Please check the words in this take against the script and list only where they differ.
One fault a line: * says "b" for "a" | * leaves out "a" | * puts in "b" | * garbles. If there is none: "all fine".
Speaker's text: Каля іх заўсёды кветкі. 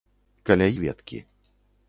* leaves out "іх заўсёды"